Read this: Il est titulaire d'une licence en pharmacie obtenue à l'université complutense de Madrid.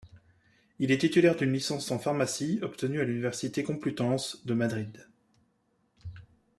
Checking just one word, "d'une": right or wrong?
right